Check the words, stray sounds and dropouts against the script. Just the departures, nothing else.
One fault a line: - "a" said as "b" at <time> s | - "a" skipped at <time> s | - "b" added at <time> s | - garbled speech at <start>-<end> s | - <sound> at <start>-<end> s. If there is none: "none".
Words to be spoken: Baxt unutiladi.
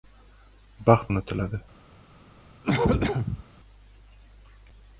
- cough at 2.6-3.4 s